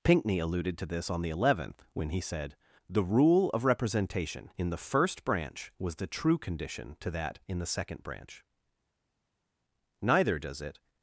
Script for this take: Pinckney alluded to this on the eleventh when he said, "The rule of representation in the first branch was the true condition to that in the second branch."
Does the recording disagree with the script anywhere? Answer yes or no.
yes